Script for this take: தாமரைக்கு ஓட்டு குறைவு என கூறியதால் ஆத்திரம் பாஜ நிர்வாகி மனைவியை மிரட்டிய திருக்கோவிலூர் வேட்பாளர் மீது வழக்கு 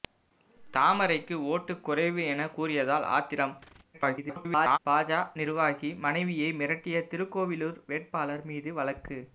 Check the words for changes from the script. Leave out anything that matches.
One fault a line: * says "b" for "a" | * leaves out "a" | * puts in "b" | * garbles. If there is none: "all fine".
* garbles